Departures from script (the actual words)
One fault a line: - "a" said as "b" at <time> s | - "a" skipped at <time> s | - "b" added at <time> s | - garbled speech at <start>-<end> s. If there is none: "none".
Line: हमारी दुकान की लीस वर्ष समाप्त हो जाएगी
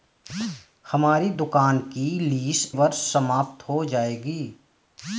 none